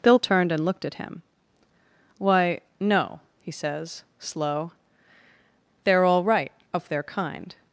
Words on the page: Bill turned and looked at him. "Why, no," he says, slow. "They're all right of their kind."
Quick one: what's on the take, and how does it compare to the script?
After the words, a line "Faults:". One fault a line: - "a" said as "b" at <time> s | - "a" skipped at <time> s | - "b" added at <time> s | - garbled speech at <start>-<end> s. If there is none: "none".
Bill turned and looked at him. "Why, no," he says, slow. "They're all right of their kind."
Faults:
none